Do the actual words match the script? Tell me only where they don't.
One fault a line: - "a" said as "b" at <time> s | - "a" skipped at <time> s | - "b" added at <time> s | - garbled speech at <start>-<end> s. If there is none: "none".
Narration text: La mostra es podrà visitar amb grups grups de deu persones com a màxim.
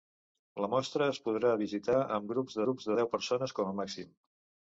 none